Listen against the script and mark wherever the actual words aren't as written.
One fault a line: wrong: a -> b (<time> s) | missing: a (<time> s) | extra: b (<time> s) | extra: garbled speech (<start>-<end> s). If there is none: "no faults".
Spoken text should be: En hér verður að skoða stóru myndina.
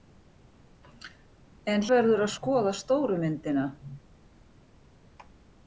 missing: hér (1.9 s)